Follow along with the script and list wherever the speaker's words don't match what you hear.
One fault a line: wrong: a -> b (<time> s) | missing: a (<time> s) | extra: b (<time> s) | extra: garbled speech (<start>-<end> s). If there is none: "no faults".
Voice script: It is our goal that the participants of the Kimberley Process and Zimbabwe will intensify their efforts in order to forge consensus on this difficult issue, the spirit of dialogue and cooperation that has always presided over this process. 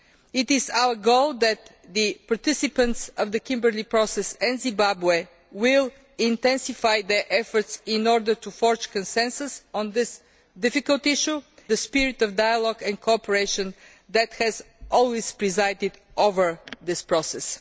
no faults